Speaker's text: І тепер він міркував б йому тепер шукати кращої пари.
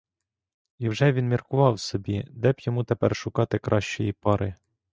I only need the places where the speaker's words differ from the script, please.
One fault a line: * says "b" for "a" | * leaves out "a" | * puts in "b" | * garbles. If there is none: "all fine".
* says "вже" for "тепер"
* puts in "собі де"